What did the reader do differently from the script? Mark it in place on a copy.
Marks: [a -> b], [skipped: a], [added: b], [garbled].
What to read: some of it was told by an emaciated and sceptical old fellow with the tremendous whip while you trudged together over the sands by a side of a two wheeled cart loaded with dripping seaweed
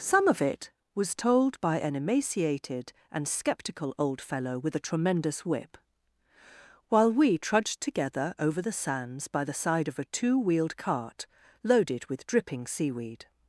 some of it was told by an emaciated and sceptical old fellow with [the -> a] tremendous whip while [you -> we] trudged together over the sands by [a -> the] side of a two wheeled cart loaded with dripping seaweed